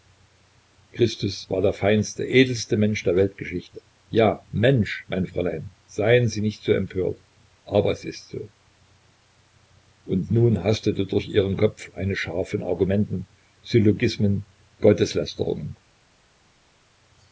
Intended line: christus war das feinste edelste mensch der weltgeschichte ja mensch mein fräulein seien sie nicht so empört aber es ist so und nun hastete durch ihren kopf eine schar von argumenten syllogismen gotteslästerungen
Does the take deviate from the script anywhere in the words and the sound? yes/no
yes